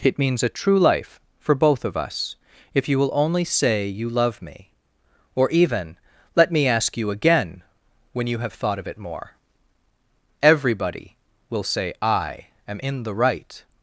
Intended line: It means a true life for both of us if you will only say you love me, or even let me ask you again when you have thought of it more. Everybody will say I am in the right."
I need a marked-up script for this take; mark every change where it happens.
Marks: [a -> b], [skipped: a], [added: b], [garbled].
It means a true life for both of us if you will only say you love me, or even let me ask you again when you have thought of it more. Everybody will say I am in the right."